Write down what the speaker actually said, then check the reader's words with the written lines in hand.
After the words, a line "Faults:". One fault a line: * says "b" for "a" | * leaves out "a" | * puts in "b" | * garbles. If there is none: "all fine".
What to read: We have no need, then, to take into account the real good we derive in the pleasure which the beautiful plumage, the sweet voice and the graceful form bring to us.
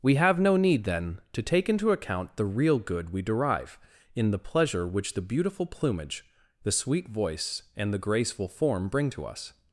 We have no need, then, to take into account the real good we derive in the pleasure which the beautiful plumage, the sweet voice and the graceful form bring to us.
Faults:
all fine